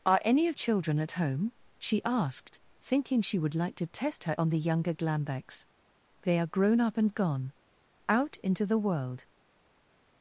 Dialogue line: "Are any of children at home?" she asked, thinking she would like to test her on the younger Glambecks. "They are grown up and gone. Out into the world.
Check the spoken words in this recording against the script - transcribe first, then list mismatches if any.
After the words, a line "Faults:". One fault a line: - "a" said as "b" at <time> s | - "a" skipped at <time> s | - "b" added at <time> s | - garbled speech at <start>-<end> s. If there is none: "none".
"Are any of children at home?" she asked, thinking she would like to test her on the younger Glambecks. "They are grown up and gone. Out into the world.
Faults:
none